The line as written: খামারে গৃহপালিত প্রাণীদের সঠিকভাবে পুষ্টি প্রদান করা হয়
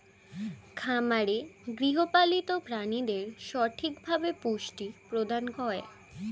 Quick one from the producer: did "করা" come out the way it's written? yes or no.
no